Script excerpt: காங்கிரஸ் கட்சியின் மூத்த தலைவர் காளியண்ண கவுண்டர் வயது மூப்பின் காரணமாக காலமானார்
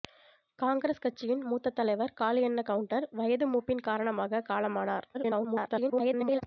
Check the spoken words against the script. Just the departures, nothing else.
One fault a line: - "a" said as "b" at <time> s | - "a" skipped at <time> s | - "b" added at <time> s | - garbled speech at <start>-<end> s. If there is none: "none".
- garbled speech at 5.1-6.4 s